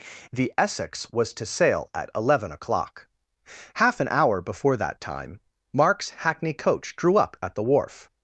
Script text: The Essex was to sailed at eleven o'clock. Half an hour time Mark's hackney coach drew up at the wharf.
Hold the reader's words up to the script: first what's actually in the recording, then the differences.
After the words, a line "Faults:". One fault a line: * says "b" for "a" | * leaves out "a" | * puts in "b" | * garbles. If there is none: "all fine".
The Essex was to sail at eleven o'clock. Half an hour before that time Mark's hackney coach drew up at the wharf.
Faults:
* says "sail" for "sailed"
* puts in "before that"